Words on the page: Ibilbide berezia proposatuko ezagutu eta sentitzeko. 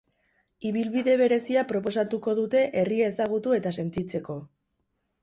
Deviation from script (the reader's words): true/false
true